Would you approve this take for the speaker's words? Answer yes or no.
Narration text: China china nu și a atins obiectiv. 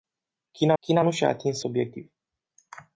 yes